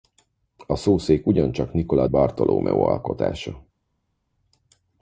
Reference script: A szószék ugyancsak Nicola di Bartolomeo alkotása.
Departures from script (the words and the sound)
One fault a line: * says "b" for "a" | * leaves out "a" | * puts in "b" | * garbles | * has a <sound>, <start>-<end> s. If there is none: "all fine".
* leaves out "di"